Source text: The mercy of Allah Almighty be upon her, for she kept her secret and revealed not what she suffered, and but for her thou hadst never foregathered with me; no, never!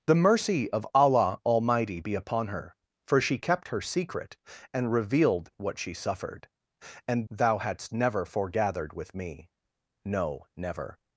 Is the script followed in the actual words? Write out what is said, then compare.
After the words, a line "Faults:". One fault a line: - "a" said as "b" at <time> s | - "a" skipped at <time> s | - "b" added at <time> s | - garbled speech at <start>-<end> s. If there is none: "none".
The mercy of Allah Almighty be upon her, for she kept her secret and revealed what she suffered, and thou hadst never foregathered with me; no, never!
Faults:
- "not" skipped at 5.5 s
- "but for her" skipped at 7.2 s